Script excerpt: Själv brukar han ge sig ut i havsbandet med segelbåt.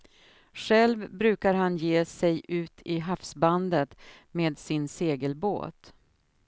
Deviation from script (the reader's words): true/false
true